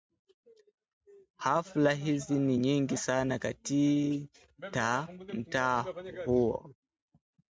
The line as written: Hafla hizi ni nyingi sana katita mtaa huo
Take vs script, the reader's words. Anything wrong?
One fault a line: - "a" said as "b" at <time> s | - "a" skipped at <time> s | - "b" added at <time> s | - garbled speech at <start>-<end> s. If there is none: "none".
none